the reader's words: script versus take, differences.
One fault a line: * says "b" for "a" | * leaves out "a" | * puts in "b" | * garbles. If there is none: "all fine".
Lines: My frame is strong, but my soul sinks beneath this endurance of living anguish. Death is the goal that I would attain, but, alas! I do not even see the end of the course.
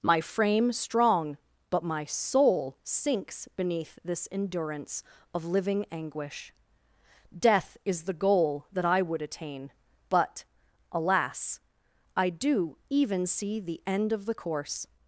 * leaves out "is"
* leaves out "not"